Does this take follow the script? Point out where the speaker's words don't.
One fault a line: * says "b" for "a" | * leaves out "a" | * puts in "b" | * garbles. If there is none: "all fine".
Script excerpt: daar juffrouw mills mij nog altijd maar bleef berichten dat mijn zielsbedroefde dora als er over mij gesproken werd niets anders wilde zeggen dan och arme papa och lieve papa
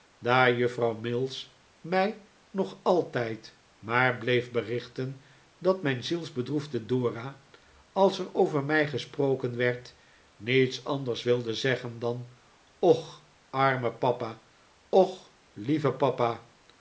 all fine